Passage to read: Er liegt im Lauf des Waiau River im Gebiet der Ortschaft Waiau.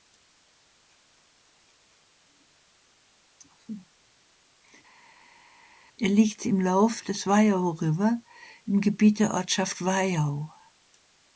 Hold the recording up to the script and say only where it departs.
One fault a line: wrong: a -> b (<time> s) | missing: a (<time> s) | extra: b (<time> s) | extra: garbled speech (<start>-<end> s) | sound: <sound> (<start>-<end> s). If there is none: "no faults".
no faults